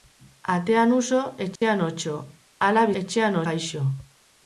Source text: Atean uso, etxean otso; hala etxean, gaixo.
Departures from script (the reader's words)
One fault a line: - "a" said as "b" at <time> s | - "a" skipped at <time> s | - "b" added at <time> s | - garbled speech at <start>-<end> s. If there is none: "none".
none